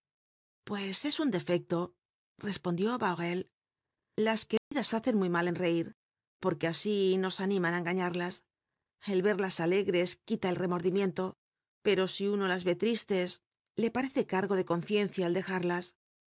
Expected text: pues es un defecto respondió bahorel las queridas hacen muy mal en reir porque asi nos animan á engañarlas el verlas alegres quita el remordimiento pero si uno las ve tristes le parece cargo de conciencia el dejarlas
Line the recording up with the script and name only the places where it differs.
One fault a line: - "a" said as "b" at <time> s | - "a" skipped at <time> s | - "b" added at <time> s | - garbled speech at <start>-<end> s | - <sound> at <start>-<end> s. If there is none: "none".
- dropout at 4.6-4.7 s